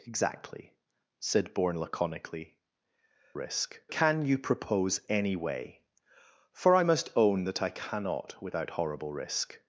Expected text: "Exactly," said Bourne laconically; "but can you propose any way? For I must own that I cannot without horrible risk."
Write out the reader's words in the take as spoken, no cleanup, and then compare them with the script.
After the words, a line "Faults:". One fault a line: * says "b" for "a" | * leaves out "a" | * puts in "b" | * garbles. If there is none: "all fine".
"Exactly," said Bourne laconically; "risk can you propose any way? For I must own that I cannot without horrible risk."
Faults:
* says "risk" for "but"